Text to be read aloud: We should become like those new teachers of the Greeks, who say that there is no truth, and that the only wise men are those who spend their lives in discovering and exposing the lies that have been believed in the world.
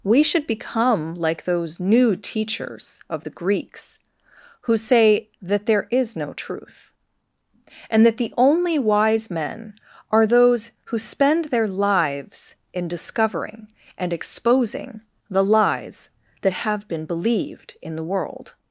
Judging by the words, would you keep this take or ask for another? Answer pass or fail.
pass